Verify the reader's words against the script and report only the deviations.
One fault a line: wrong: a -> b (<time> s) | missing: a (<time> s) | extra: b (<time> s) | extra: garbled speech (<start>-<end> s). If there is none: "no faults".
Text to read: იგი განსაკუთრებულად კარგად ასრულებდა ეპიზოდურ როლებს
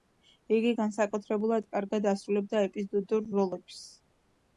no faults